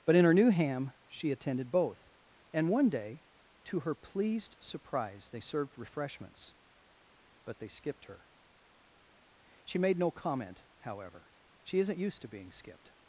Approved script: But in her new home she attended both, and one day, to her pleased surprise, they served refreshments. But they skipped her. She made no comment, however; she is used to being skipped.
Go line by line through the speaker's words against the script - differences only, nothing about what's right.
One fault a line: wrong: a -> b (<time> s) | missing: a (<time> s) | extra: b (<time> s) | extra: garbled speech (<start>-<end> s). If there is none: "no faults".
wrong: home -> ham (0.5 s)
wrong: is -> isn't (11.8 s)